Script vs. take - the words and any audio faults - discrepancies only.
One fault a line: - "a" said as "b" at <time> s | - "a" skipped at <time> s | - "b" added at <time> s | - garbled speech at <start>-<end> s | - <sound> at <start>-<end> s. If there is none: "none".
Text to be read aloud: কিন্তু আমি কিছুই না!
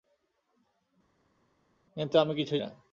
none